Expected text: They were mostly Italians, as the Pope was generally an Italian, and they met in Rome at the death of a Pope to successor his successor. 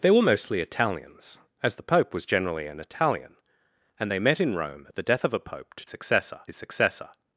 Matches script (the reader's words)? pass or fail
pass